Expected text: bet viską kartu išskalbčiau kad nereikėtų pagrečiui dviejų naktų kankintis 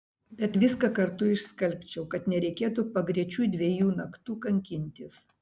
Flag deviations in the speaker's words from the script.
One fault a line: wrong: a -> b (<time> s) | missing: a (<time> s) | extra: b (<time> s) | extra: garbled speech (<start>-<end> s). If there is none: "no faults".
no faults